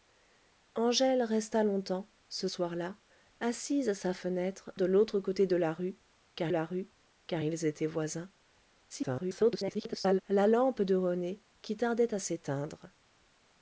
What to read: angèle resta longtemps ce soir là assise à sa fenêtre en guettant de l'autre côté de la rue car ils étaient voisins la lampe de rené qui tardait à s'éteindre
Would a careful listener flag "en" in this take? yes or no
yes